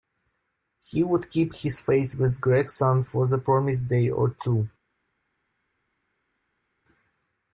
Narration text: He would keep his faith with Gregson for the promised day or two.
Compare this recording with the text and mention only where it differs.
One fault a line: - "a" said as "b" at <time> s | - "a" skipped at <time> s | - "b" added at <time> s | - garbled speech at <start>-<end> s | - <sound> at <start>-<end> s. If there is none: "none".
none